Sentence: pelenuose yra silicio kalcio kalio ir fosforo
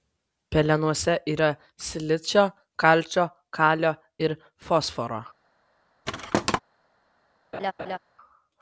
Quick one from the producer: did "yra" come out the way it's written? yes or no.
yes